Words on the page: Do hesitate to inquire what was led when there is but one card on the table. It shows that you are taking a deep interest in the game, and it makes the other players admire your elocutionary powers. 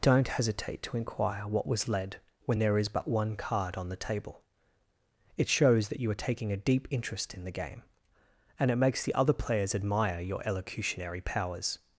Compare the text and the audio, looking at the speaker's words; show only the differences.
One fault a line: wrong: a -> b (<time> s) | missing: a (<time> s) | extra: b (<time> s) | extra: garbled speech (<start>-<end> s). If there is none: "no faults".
wrong: Do -> Don't (0.0 s)